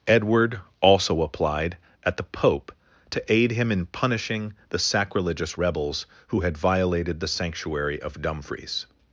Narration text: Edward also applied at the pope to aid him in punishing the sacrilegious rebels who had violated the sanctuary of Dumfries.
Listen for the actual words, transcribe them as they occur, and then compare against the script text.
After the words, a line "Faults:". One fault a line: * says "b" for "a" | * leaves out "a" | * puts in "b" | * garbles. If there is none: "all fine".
Edward also applied at the pope to aid him in punishing the sacrilegious rebels who had violated the sanctuary of Dumfries.
Faults:
all fine